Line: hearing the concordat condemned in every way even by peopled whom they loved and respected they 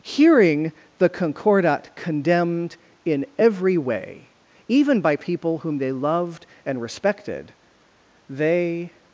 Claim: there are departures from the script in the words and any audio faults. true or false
true